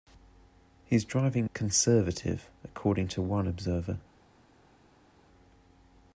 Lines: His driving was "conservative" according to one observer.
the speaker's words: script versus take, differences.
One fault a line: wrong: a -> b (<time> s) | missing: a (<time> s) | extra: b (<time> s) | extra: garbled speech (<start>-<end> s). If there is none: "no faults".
missing: was (1.5 s)